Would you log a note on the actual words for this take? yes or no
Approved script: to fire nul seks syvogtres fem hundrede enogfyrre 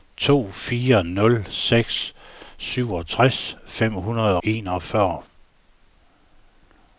no